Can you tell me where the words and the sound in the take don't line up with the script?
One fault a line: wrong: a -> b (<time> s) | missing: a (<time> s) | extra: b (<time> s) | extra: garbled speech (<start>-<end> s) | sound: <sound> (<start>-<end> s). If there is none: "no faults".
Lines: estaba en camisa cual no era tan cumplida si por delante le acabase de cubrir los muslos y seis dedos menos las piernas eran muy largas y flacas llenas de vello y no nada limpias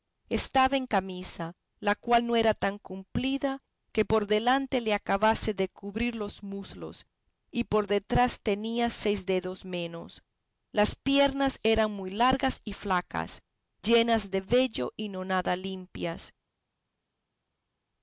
extra: la (1.8 s)
wrong: si -> que (3.9 s)
extra: por detrás tenía (7.6 s)